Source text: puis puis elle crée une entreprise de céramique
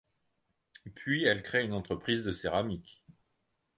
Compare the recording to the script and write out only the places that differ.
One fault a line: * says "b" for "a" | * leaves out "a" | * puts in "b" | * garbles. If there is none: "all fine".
* leaves out "puis"